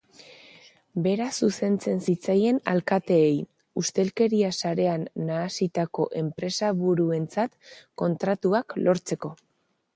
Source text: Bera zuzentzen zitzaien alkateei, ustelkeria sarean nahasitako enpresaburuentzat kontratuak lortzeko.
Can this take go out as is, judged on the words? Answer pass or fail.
pass